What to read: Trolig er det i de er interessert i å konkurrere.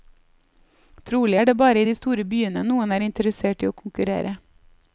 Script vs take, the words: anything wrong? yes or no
yes